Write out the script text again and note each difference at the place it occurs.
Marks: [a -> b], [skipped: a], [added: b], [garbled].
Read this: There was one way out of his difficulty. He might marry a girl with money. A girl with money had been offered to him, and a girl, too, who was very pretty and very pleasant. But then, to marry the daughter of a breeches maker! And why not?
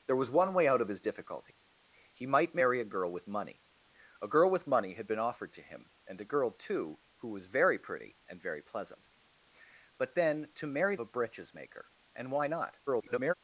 There was one way out of his difficulty. He might marry a girl with money. A girl with money had been offered to him, and a girl, too, who was very pretty and very pleasant. But then, to marry [skipped: the daughter of] a breeches maker! And why not? [garbled]